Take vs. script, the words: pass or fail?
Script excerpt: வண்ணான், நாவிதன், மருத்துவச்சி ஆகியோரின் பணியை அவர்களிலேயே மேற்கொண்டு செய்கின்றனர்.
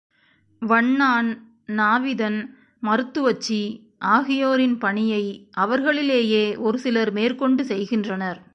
fail